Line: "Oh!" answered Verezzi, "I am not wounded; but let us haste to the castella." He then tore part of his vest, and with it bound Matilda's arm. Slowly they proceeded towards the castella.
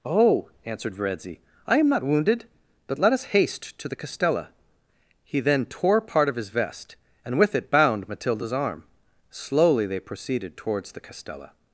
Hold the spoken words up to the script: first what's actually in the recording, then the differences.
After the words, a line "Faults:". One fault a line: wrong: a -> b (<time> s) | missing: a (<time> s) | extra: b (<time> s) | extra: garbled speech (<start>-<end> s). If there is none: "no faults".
"Oh!" answered Verezzi, "I am not wounded; but let us haste to the castella." He then tore part of his vest, and with it bound Matilda's arm. Slowly they proceeded towards the castella.
Faults:
no faults